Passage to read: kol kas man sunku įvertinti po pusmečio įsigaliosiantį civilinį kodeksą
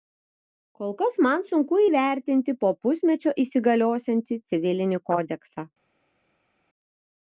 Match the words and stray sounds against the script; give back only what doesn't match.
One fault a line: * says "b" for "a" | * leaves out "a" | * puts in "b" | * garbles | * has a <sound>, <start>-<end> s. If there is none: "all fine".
all fine